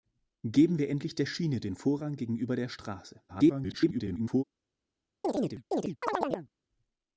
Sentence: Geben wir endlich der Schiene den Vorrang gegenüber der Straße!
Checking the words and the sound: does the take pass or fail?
fail